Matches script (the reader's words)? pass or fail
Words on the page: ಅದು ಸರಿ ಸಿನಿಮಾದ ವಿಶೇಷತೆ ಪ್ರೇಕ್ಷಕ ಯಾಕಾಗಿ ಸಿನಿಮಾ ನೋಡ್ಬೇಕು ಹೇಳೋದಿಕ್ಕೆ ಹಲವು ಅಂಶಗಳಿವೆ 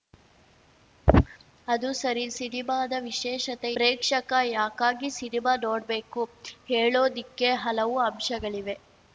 pass